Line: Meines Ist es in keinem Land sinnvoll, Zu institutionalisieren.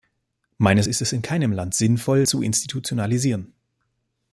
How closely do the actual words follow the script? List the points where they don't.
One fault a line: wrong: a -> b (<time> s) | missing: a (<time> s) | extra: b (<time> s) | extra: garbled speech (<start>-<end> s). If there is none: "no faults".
no faults